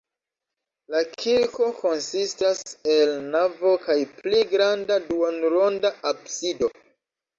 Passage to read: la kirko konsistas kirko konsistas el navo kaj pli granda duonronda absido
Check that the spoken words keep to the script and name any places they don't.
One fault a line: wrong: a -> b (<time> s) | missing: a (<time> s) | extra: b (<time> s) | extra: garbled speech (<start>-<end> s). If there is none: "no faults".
missing: kirko konsistas (2.6 s)